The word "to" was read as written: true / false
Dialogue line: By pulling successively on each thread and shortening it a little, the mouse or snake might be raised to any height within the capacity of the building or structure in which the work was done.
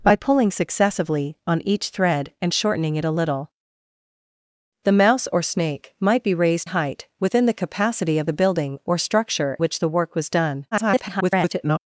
false